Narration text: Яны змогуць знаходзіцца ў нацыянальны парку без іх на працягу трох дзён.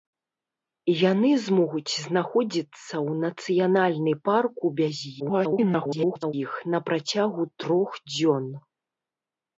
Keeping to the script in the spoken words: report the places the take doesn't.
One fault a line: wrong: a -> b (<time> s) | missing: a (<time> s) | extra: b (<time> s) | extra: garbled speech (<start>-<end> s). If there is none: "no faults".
extra: garbled speech (5.2-6.3 s)